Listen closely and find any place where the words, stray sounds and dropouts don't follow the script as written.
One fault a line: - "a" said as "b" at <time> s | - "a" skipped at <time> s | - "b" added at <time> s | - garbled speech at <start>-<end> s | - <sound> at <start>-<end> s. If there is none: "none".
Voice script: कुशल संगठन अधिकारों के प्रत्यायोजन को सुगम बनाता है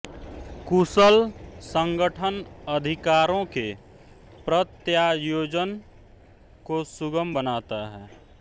none